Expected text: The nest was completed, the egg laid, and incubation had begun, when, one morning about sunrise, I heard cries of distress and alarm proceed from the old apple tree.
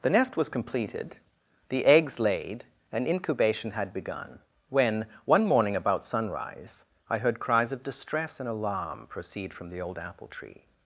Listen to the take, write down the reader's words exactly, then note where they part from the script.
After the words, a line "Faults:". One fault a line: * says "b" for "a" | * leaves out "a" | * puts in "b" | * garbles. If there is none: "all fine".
The nest was completed, the eggs laid, and incubation had begun, when, one morning about sunrise, I heard cries of distress and alarm proceed from the old apple tree.
Faults:
* says "eggs" for "egg"